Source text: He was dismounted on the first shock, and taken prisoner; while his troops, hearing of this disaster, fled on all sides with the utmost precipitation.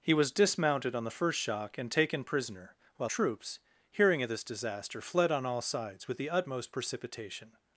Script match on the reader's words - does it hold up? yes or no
no